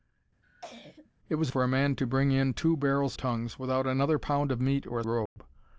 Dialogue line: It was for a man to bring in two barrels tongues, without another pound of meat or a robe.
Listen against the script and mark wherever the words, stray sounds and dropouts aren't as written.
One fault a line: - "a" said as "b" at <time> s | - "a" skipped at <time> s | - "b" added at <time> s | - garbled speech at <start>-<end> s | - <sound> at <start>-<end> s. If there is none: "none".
- cough at 0.4-1.1 s
- dropout at 5.3-5.4 s